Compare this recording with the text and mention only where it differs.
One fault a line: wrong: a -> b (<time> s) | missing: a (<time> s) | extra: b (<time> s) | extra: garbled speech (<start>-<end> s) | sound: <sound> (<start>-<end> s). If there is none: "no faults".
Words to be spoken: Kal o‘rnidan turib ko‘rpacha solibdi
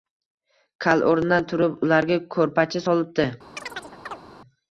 extra: ularga (1.9 s)
sound: chirp (3.6-4.2 s)